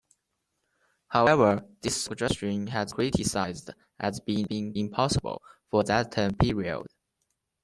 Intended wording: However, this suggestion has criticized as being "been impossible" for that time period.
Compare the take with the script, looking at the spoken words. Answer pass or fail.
pass